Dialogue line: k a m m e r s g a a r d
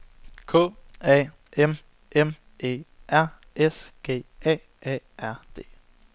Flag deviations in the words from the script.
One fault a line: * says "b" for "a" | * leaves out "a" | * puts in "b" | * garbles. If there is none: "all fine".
all fine